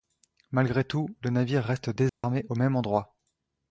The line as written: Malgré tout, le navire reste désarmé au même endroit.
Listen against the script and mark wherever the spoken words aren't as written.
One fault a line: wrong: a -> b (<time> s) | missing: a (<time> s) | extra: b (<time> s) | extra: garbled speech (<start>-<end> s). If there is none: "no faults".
no faults